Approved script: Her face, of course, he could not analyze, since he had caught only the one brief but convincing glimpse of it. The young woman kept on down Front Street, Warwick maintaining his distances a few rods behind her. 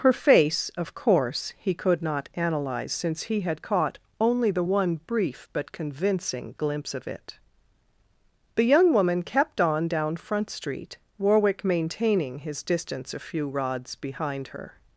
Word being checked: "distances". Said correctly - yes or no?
no